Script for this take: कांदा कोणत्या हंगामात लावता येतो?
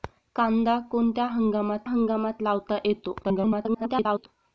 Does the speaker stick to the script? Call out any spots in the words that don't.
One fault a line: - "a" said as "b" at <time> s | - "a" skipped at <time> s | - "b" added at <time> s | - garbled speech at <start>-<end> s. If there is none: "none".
- "हंगामात" added at 1.8 s
- garbled speech at 3.2-4.3 s